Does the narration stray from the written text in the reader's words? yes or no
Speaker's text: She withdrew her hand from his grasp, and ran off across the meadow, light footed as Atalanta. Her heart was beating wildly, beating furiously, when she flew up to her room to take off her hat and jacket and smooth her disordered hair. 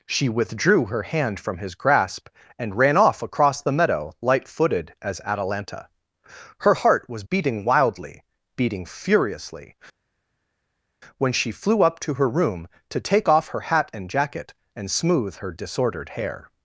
no